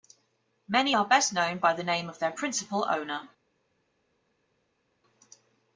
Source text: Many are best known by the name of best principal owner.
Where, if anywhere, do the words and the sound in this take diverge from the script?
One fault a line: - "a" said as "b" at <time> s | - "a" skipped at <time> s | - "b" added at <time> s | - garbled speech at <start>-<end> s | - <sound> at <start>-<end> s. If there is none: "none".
- "best" said as "their" at 2.2 s